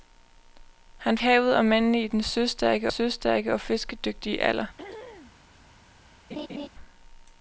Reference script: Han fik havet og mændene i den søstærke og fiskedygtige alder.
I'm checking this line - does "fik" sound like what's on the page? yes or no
no